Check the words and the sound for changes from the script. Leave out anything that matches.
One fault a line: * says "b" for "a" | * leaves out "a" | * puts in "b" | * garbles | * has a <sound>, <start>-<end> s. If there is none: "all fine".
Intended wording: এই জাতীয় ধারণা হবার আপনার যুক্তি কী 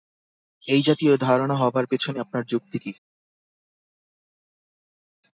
* puts in "পেছনে"